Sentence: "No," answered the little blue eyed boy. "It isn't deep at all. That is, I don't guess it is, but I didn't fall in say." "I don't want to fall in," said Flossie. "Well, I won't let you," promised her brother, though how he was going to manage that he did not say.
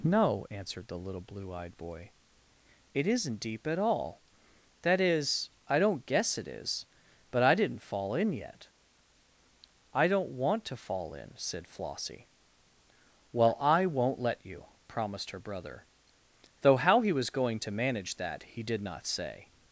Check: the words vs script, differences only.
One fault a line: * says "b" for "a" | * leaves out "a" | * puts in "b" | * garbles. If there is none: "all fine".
* says "yet" for "say"